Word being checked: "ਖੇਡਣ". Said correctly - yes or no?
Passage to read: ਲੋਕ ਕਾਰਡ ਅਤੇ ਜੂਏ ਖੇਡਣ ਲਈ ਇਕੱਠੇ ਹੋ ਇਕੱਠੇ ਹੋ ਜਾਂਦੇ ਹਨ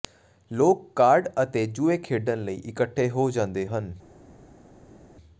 yes